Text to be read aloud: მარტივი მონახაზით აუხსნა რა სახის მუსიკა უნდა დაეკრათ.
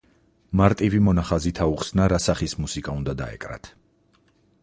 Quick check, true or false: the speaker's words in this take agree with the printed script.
true